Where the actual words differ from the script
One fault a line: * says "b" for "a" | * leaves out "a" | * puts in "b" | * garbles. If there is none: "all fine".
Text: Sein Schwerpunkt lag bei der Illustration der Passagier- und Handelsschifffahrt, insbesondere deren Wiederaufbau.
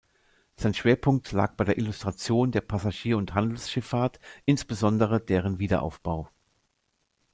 all fine